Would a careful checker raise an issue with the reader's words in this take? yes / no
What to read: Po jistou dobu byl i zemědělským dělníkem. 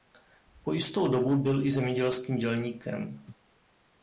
no